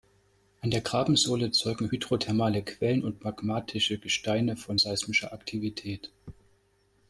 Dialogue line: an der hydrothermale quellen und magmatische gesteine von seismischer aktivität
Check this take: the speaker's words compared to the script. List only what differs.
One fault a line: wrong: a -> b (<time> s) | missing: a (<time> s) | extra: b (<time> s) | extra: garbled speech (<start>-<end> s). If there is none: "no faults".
extra: grabensohle zeugen (0.8 s)